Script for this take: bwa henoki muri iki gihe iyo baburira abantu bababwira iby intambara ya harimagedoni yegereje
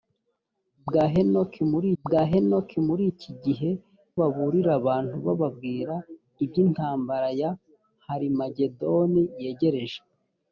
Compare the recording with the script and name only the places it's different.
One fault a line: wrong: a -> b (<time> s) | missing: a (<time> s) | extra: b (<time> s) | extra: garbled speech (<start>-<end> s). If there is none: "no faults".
extra: bwa henoki muri (2.0 s)
missing: iyo (3.7 s)